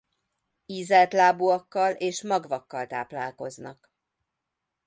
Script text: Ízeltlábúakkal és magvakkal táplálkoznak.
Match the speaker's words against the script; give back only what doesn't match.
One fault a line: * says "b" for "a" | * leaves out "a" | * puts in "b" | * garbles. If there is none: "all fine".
all fine